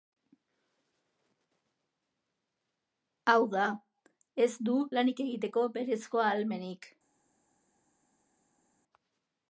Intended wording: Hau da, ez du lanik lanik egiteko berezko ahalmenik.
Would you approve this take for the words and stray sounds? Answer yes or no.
no